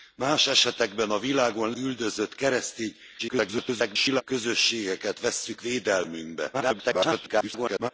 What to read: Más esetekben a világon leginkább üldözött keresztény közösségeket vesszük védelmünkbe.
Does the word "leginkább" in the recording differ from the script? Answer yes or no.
yes